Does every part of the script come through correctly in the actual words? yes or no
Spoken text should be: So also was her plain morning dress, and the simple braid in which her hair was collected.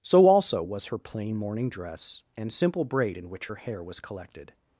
no